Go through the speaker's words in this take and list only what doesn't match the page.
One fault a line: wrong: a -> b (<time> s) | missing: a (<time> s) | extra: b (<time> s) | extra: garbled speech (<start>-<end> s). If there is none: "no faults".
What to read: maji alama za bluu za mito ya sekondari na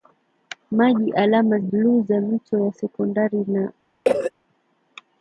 missing: za (1.6 s)